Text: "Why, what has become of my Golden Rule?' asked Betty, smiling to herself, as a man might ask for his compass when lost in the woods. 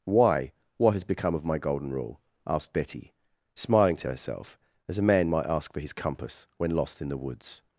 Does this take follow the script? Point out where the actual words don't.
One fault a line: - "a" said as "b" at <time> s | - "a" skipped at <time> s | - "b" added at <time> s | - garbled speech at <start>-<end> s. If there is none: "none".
none